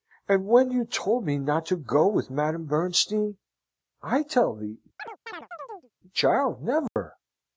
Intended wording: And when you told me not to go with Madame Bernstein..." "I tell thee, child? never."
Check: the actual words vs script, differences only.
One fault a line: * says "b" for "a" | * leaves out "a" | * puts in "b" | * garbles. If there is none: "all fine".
all fine